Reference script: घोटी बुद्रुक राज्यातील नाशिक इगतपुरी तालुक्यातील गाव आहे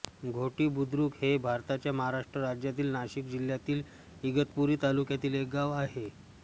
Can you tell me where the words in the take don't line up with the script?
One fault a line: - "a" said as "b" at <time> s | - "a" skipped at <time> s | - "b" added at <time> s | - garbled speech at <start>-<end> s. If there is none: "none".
- "हे भारताच्या महाराष्ट्र" added at 1.1 s
- "जिल्ह्यातील" added at 3.3 s
- "एक" added at 5.3 s